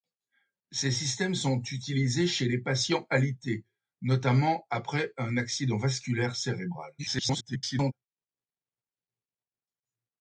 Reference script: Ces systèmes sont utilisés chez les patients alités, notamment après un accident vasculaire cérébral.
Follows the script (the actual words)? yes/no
no